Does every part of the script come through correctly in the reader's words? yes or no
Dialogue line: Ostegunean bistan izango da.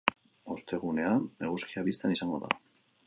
no